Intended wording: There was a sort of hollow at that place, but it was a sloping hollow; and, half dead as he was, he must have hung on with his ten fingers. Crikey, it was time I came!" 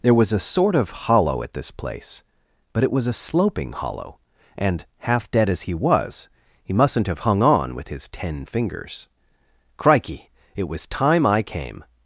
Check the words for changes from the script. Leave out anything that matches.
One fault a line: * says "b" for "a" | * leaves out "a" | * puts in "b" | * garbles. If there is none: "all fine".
* says "this" for "that"
* says "mustn't" for "must"